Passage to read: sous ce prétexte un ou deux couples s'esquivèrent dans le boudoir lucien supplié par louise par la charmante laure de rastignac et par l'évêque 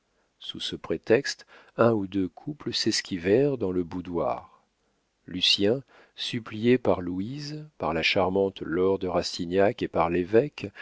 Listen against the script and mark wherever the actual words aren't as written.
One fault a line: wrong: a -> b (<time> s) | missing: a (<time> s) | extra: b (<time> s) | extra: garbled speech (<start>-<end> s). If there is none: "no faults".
no faults